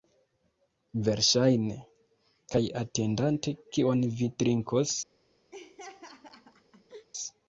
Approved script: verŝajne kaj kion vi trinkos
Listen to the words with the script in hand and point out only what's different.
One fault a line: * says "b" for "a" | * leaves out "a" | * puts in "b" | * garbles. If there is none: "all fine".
* puts in "atendante"